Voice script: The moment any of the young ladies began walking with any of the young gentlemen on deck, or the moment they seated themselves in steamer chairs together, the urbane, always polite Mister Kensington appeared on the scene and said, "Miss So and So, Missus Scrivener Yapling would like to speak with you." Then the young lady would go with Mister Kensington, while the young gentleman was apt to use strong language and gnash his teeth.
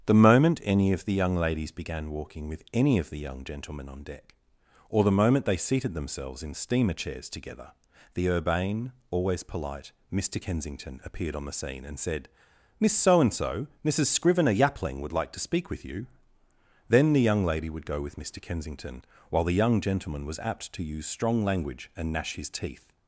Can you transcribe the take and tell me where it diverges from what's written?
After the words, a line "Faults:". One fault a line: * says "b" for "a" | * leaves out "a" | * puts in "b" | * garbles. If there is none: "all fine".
The moment any of the young ladies began walking with any of the young gentlemen on deck, or the moment they seated themselves in steamer chairs together, the urbane, always polite Mister Kensington appeared on the scene and said, "Miss So and So, Missus Scrivener Yapling would like to speak with you." Then the young lady would go with Mister Kensington, while the young gentleman was apt to use strong language and gnash his teeth.
Faults:
all fine